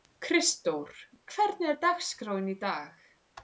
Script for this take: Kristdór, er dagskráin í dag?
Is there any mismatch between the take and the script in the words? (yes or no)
yes